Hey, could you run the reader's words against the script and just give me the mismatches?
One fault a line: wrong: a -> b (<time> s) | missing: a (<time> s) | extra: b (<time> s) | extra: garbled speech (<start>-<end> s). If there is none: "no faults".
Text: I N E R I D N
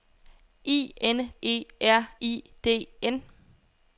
no faults